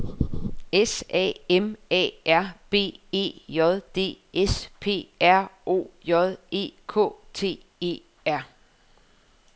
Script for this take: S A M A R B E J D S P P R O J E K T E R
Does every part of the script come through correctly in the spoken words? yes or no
no